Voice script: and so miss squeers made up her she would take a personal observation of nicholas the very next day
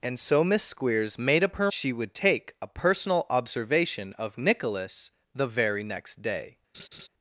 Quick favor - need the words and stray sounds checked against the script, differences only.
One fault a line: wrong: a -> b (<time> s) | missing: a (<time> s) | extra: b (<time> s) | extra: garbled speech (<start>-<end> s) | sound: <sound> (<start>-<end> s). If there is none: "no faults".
sound: laugh (6.7-7.1 s)